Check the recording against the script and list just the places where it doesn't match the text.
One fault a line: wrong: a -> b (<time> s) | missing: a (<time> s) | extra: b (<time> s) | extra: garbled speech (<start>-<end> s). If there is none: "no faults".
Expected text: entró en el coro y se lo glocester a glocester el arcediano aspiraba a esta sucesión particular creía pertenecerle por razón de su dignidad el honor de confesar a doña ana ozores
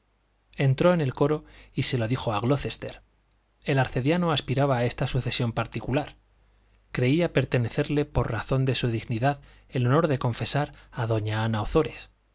wrong: glocester -> dijo (2.1 s)